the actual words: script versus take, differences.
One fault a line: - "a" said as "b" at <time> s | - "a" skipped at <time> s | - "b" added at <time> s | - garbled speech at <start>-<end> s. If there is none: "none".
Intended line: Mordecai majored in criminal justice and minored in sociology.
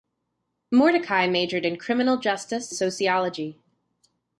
- "and minored in" skipped at 2.7 s